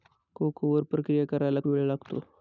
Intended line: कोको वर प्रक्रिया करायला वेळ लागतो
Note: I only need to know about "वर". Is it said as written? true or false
true